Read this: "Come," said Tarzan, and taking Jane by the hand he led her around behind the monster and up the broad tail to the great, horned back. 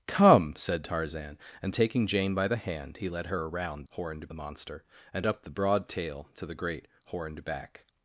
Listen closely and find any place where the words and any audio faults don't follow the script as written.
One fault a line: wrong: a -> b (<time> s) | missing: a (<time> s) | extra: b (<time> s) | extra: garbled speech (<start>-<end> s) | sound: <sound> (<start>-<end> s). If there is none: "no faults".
wrong: behind -> horned (3.9 s)